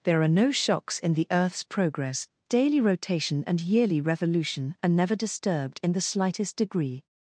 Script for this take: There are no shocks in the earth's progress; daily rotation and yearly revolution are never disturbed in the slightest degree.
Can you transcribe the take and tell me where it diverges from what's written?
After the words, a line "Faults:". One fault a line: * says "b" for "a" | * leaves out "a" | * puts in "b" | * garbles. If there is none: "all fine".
There are no shocks in the earth's progress; daily rotation and yearly revolution are never disturbed in the slightest degree.
Faults:
all fine